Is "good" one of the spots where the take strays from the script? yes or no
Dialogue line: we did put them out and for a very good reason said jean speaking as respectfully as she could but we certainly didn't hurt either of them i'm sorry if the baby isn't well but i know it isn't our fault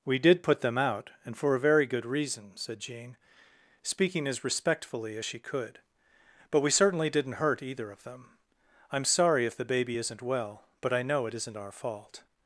no